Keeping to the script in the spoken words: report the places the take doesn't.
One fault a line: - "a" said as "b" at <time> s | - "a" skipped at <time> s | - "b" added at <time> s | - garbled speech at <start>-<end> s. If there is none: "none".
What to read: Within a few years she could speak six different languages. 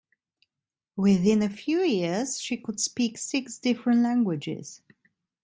none